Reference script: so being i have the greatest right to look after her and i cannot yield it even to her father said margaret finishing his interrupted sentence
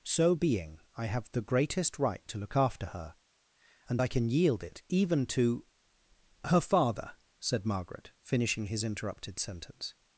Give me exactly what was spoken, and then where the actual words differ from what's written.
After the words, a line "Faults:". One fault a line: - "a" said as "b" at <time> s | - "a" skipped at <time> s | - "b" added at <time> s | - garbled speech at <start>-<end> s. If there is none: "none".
so being i have the greatest right to look after her and i can yield it even to her father said margaret finishing his interrupted sentence
Faults:
- "cannot" said as "can" at 4.1 s